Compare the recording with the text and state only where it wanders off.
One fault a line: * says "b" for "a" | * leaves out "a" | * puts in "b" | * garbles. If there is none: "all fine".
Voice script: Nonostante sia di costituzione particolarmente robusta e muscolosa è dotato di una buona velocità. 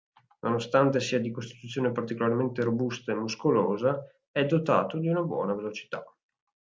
all fine